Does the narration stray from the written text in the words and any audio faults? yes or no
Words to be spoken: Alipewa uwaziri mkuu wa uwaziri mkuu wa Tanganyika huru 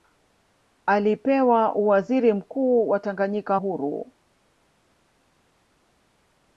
yes